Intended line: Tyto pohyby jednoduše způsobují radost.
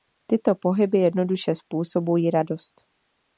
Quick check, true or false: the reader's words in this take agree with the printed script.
true